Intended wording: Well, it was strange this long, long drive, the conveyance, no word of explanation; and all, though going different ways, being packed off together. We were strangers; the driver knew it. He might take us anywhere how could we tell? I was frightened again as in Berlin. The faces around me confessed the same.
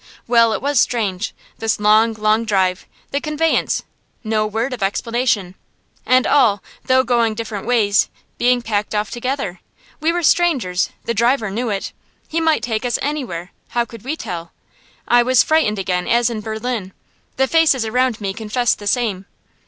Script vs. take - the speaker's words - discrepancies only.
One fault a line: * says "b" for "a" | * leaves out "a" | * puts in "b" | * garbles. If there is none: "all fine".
all fine